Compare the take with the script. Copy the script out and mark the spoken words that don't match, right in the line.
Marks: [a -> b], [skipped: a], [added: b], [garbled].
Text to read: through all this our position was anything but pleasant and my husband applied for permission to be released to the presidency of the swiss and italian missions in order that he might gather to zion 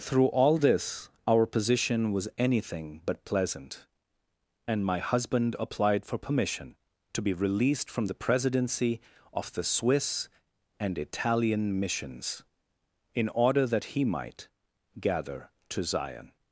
through all this our position was anything but pleasant and my husband applied for permission to be released [to -> from] the presidency of the swiss and italian missions in order that he might gather to zion